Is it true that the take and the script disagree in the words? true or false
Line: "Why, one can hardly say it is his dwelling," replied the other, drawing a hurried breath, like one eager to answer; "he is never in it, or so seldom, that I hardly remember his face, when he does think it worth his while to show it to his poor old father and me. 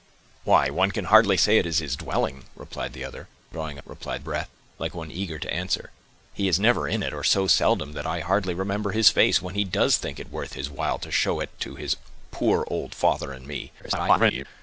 true